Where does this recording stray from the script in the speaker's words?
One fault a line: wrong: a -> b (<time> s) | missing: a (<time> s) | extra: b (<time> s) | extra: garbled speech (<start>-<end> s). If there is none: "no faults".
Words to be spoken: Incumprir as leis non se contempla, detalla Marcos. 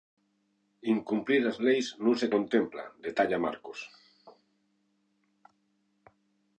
no faults